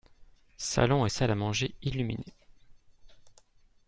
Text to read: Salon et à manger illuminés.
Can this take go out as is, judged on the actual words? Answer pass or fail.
fail